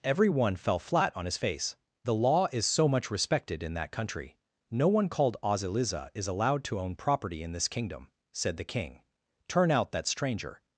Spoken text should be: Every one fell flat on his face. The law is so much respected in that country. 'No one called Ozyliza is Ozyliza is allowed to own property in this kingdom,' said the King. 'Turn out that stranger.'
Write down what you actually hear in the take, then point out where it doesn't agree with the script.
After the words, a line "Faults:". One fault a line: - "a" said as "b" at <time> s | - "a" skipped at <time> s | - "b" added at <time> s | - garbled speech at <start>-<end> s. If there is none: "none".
Every one fell flat on his face. The law is so much respected in that country. 'No one called Ozyliza is allowed to own property in this kingdom,' said the King. 'Turn out that stranger.'
Faults:
- "Ozyliza is" skipped at 6.3 s